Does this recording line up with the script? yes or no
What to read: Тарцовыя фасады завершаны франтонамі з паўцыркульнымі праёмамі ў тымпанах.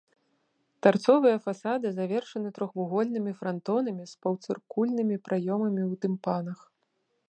no